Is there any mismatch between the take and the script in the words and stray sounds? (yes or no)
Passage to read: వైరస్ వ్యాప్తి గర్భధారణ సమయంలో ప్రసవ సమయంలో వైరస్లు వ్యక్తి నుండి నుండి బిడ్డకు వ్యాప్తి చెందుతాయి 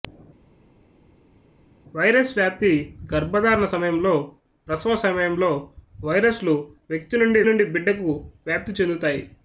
no